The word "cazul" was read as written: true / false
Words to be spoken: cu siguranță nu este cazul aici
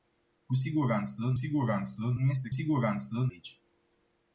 false